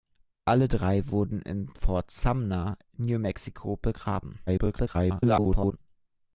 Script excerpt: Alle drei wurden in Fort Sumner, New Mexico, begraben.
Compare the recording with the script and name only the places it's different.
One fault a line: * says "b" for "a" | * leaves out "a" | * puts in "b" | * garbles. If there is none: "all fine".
* garbles